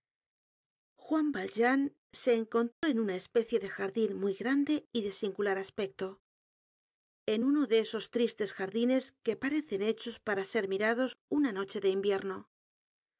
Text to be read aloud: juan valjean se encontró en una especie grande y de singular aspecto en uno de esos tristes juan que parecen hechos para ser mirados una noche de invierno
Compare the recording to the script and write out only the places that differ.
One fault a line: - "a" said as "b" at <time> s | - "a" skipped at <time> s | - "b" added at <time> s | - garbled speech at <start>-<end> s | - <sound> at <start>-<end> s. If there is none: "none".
- dropout at 2.7-2.8 s
- "de jardin muy" added at 3.6 s
- "juan" said as "jardines" at 8.5 s